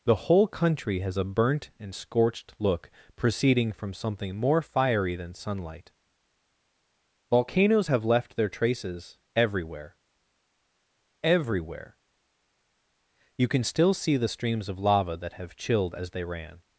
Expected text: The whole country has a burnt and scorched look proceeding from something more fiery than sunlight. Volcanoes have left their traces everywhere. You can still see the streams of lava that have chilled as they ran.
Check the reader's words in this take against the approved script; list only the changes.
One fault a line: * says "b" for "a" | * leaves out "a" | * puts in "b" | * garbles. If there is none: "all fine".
* puts in "everywhere"